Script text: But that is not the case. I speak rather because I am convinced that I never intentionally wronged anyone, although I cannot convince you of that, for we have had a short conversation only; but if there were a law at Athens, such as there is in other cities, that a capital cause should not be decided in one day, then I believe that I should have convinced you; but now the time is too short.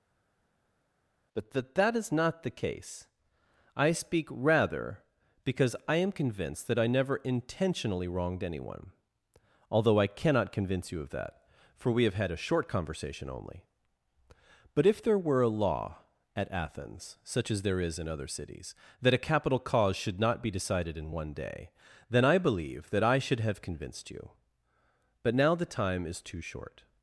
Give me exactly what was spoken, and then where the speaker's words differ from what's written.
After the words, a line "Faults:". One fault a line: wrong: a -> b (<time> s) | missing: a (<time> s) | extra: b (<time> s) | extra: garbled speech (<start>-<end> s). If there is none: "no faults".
But that that is not the case. I speak rather because I am convinced that I never intentionally wronged anyone, although I cannot convince you of that, for we have had a short conversation only; but if there were a law at Athens, such as there is in other cities, that a capital cause should not be decided in one day, then I believe that I should have convinced you; but now the time is too short.
Faults:
extra: that (1.7 s)